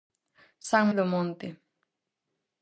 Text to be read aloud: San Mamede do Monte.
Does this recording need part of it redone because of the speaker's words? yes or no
yes